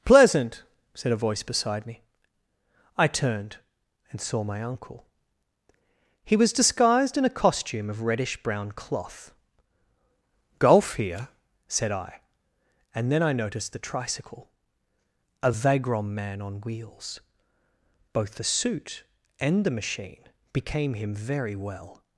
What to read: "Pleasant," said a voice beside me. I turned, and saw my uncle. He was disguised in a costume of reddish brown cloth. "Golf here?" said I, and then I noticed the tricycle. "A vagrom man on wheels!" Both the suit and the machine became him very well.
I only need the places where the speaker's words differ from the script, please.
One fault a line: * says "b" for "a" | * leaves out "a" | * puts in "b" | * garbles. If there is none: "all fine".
all fine